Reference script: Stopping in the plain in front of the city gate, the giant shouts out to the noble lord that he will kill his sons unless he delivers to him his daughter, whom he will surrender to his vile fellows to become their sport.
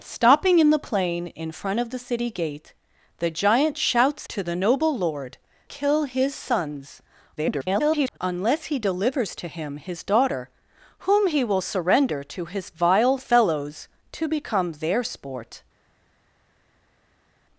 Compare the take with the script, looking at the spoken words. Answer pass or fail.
fail